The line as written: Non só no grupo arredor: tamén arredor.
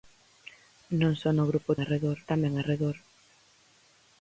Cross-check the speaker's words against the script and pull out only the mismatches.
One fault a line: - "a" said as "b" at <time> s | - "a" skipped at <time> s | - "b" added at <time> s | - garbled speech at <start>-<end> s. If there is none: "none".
none